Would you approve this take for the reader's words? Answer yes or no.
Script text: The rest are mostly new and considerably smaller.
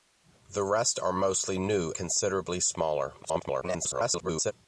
no